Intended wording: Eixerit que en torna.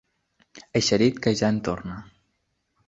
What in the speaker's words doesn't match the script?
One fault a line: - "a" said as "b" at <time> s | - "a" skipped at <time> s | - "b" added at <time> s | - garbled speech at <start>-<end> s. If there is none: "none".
- "ja" added at 1.4 s